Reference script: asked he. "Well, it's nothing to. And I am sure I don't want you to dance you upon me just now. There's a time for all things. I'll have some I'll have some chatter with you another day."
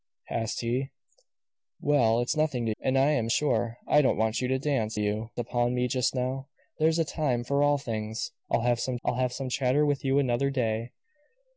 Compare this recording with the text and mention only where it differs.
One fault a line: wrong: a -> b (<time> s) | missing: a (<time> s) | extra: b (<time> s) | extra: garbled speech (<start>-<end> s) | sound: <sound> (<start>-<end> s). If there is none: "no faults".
no faults